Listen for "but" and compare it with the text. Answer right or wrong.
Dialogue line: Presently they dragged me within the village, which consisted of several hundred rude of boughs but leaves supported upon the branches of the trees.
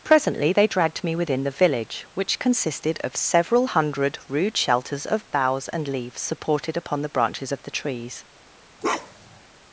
wrong